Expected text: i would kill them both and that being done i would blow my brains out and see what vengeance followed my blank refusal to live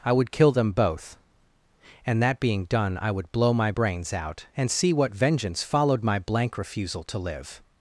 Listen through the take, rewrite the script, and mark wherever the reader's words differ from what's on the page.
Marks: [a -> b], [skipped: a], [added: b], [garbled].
i would kill them both and that being done i would blow my brains out and see what vengeance followed my blank refusal to live